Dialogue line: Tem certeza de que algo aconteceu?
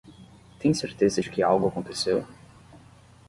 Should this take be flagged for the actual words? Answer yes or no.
no